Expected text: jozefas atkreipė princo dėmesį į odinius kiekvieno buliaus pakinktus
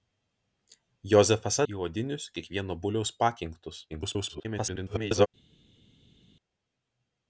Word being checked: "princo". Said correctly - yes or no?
no